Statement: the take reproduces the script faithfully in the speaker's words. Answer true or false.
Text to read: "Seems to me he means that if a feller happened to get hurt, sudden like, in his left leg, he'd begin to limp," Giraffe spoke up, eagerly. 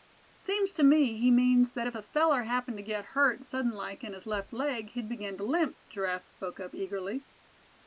true